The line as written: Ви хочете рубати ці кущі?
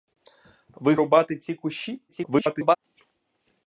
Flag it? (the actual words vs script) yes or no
yes